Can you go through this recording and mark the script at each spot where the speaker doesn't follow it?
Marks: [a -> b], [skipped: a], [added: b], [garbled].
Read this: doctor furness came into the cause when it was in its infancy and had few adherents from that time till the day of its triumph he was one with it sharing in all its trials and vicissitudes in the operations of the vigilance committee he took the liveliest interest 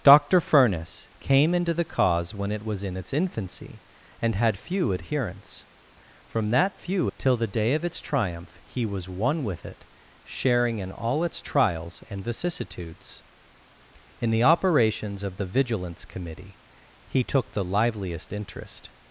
doctor furness came into the cause when it was in its infancy and had few adherents from that [time -> few] till the day of its triumph he was one with it sharing in all its trials and vicissitudes in the operations of the vigilance committee he took the liveliest interest